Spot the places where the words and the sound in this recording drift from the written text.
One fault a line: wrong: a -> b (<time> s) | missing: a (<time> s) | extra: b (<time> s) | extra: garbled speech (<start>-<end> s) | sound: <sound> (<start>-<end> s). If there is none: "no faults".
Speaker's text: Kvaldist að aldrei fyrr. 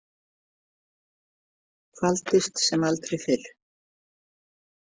wrong: að -> sem (2.7 s)